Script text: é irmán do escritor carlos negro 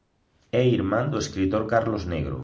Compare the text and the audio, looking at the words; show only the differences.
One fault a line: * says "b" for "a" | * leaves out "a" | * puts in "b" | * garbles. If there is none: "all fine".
all fine